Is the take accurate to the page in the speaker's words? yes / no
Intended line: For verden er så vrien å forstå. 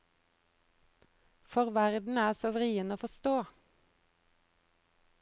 yes